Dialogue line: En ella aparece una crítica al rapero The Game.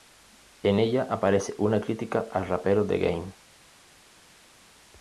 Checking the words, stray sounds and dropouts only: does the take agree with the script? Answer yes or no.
yes